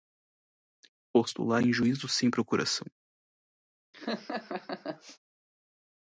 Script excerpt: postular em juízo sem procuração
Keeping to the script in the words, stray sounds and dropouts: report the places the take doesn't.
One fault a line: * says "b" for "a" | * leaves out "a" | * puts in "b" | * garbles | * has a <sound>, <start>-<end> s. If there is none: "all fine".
* has a laugh, 3.9-5.2 s